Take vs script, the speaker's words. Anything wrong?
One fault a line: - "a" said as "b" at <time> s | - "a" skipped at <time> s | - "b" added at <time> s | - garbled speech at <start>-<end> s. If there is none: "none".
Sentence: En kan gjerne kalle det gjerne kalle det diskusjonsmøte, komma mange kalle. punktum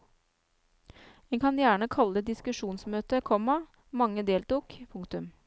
- "gjerne kalle det" skipped at 2.3 s
- "kalle" said as "deltok" at 4.2 s